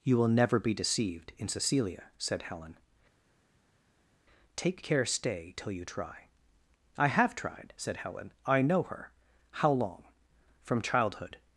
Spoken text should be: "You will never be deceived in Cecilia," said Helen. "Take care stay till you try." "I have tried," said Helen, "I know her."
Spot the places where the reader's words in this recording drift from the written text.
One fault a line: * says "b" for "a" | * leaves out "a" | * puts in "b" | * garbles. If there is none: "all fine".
* puts in "How long From childhood"